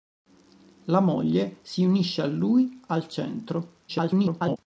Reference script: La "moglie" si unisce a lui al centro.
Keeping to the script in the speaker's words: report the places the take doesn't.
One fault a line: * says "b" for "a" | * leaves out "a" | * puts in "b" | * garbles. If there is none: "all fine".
* garbles